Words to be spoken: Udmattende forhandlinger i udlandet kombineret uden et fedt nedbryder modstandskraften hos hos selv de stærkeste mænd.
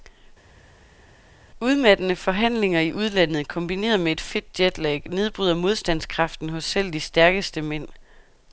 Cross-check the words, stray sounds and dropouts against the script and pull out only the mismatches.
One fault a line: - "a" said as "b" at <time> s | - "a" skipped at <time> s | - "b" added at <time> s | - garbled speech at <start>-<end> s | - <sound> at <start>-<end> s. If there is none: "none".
- "uden" said as "med" at 4.0 s
- "jetlag" added at 4.6 s
- "hos" skipped at 6.6 s